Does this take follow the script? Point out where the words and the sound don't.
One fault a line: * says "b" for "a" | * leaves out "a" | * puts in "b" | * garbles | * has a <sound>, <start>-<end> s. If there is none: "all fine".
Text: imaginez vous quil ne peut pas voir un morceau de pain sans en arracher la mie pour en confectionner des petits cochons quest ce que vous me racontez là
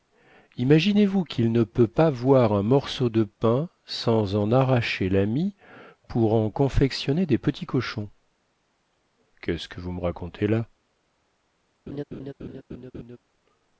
* has a laugh, 11.9-13.2 s